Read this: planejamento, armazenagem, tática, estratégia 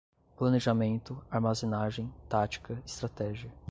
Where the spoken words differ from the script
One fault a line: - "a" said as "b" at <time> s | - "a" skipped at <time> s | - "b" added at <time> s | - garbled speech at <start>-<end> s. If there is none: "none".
none